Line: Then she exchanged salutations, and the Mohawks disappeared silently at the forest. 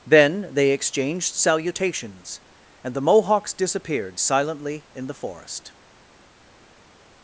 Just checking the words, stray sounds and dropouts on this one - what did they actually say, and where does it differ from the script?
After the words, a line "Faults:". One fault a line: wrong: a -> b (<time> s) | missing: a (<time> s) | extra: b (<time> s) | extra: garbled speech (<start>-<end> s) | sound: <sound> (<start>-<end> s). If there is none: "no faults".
Then they exchanged salutations, and the Mohawks disappeared silently in the forest.
Faults:
wrong: she -> they (0.5 s)
wrong: at -> in (5.0 s)